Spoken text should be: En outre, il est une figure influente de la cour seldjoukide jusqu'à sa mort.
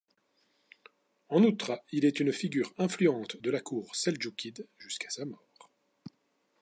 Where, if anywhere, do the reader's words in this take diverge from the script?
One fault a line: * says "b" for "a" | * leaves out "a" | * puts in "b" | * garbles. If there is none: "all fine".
all fine